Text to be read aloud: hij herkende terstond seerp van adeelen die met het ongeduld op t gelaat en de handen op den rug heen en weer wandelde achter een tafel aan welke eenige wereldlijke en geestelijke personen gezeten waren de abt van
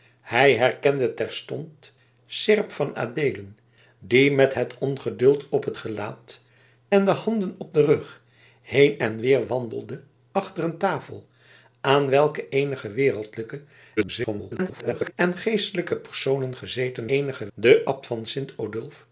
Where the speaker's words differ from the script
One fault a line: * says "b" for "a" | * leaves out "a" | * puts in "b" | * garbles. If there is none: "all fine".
* garbles
* says "eenige" for "waren"